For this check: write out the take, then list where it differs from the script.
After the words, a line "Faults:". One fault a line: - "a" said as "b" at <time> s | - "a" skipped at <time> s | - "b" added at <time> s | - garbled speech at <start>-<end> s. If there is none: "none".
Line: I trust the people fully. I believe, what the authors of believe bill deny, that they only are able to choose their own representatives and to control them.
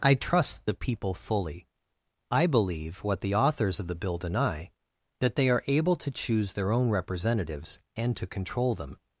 I trust the people fully. I believe, what the authors of the bill deny, that they are able to choose their own representatives and to control them.
Faults:
- "believe" said as "the" at 3.9 s
- "only" skipped at 5.5 s